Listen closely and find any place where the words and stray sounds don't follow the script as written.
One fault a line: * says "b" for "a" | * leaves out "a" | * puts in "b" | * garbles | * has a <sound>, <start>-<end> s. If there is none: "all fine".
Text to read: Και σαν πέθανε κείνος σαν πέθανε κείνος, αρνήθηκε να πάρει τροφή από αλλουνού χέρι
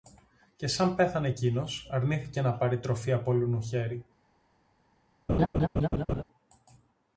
* leaves out "σαν πέθανε κείνος"
* has a laugh, 5.3-6.2 s